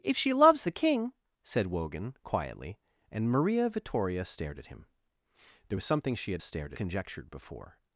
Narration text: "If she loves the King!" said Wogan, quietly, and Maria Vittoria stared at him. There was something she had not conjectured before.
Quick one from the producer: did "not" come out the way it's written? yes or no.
no